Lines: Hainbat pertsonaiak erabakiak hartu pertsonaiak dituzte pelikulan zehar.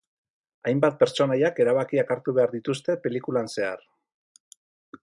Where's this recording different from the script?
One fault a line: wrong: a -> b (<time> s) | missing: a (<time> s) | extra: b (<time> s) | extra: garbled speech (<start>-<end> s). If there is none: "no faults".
wrong: pertsonaiak -> behar (2.4 s)